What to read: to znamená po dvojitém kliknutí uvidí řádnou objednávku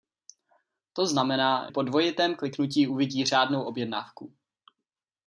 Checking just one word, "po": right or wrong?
right